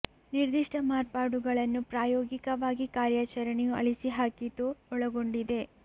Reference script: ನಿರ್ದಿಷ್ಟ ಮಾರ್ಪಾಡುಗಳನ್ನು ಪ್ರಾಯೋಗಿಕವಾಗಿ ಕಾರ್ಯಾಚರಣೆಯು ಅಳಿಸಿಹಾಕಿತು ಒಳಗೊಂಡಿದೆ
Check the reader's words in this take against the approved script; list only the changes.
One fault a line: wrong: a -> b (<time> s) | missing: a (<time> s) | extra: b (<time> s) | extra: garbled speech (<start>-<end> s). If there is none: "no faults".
no faults